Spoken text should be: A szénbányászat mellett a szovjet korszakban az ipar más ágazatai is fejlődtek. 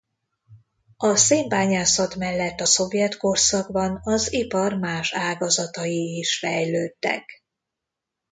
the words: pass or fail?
pass